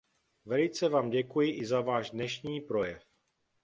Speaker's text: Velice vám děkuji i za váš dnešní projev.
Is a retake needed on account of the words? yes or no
no